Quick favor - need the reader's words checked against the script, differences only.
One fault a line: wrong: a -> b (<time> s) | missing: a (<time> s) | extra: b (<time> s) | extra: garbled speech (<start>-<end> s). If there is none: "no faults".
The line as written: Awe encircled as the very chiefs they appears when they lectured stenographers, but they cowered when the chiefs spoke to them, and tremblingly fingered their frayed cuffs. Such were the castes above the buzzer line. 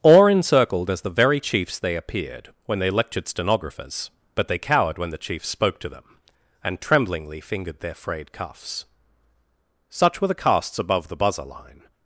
wrong: appears -> appeared (1.9 s)